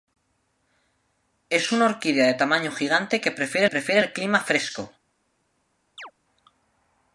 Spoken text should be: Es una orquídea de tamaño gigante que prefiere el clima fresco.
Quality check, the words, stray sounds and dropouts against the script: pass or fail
fail